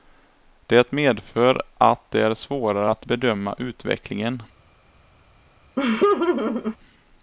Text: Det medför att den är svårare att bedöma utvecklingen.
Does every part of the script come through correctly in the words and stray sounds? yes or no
no